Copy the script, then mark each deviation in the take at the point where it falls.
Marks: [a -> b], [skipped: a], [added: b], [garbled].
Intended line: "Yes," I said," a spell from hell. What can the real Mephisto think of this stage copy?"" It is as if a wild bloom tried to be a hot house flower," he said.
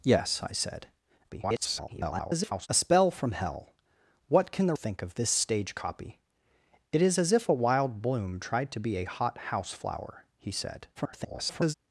"Yes," I said," [garbled] a spell from hell. What can the [skipped: real Mephisto] think of this stage copy?"" It is as if a wild bloom tried to be a hot house flower," he said. [garbled]